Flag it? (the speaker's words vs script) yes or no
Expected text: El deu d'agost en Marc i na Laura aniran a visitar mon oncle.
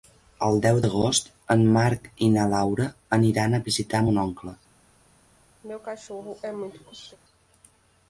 no